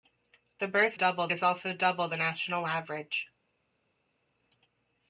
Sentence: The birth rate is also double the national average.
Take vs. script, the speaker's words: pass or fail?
fail